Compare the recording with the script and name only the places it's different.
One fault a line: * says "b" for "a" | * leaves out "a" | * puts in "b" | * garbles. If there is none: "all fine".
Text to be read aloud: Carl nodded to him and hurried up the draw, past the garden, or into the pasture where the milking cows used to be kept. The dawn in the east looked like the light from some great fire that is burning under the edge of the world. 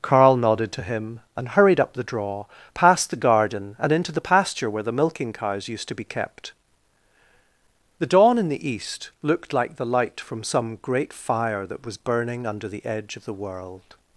* says "and" for "or"
* says "was" for "is"